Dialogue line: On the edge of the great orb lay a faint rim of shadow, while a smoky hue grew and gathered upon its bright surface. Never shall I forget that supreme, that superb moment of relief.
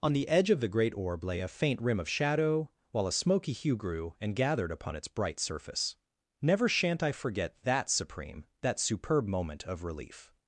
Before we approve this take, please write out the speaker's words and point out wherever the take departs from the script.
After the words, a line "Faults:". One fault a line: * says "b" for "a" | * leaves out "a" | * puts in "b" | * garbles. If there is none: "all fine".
On the edge of the great orb lay a faint rim of shadow, while a smoky hue grew and gathered upon its bright surface. Never shan't I forget that supreme, that superb moment of relief.
Faults:
* says "shan't" for "shall"